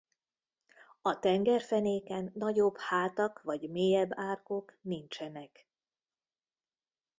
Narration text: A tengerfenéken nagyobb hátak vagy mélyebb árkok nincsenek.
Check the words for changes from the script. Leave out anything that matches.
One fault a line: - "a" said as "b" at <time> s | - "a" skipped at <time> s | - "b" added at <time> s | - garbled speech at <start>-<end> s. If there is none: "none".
none